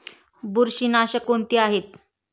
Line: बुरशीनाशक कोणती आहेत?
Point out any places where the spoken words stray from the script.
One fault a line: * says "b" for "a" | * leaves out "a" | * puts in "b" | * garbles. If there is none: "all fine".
all fine